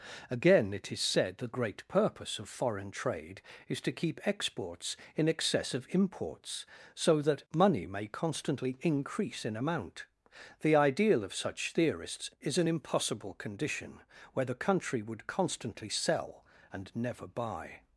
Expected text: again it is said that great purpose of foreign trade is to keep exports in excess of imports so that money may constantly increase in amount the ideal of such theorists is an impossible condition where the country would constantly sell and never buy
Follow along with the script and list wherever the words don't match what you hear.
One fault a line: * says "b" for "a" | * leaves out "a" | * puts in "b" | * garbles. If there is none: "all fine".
all fine